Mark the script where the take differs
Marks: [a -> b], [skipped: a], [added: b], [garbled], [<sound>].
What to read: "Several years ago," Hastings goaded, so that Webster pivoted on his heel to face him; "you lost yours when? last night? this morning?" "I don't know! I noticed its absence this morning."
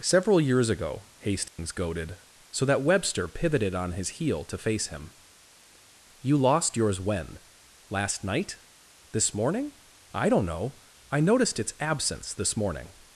"Several years ago," Hastings [dropout] goaded, so that Webster pivoted on his heel to face him; "you lost yours when? last night? this morning?" "I don't know! I noticed its absence this morning."